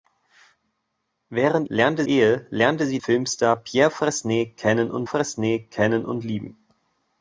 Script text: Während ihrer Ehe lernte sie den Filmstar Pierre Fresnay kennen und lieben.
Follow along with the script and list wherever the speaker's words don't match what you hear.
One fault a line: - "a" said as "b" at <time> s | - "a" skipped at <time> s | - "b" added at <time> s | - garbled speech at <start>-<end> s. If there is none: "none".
- "ihrer" said as "lernte" at 1.7 s
- "den" skipped at 3.0 s
- "Fresnay kennen und" added at 5.0 s